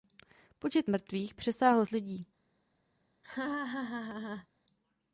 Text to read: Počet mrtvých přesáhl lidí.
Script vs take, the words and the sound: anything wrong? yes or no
yes